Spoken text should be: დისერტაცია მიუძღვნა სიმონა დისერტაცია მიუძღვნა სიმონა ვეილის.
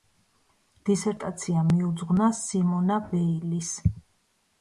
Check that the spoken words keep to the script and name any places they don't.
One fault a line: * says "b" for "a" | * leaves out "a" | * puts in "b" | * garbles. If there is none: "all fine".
* leaves out "დისერტაცია მიუძღვნა სიმონა"